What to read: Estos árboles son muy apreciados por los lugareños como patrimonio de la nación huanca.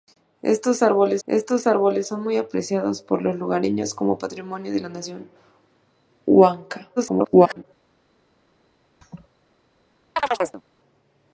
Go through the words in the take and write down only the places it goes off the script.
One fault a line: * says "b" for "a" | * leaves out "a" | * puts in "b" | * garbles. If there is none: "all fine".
* puts in "estos árboles"
* garbles